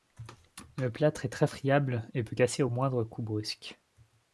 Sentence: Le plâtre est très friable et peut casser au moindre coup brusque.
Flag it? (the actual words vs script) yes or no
no